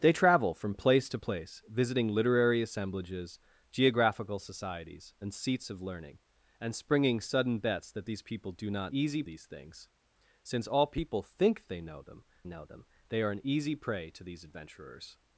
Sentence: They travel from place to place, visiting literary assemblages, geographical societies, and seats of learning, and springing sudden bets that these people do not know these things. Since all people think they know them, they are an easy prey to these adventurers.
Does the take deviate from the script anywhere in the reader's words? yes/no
yes